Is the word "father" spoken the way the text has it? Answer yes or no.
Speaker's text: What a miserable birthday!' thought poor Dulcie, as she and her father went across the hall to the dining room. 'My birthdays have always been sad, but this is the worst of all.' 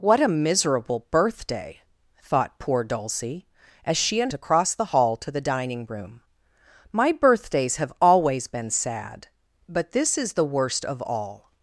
no